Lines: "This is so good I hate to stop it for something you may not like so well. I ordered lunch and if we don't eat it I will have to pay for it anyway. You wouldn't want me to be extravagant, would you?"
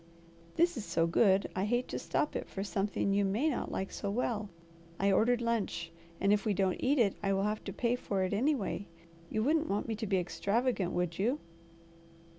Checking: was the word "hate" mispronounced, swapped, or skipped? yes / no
no